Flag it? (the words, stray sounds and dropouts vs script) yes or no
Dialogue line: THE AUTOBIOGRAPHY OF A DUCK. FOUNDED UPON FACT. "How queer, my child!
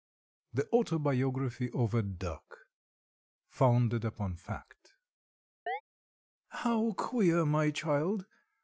yes